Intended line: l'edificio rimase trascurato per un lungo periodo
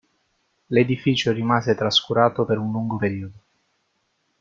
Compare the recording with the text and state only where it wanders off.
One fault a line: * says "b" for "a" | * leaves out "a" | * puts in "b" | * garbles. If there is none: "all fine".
all fine